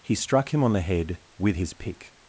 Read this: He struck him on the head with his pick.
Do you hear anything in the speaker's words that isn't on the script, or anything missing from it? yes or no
no